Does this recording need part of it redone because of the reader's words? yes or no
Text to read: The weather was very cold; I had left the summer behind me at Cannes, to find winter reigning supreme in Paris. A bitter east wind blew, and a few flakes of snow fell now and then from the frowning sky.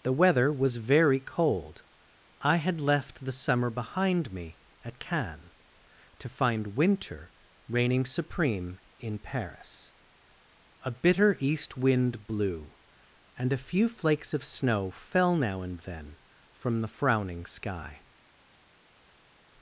no